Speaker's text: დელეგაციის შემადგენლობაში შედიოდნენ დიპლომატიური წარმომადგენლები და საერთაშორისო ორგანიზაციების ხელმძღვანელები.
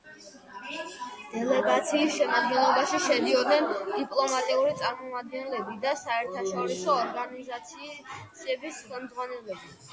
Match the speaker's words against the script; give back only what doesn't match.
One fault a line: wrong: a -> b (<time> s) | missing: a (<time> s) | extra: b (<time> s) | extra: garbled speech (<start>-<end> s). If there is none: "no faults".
no faults